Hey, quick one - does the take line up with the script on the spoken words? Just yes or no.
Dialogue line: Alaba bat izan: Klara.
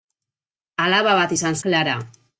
yes